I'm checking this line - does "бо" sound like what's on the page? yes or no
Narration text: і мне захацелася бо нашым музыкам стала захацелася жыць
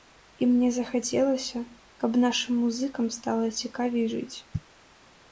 no